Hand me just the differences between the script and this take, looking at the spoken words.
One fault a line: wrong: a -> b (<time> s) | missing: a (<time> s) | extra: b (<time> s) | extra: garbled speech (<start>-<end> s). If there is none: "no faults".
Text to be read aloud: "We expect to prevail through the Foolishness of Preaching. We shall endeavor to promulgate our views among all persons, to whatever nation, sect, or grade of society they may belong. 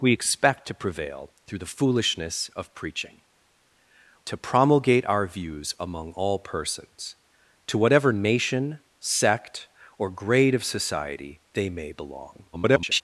missing: We shall endeavor (3.2 s)
extra: garbled speech (12.5-13.0 s)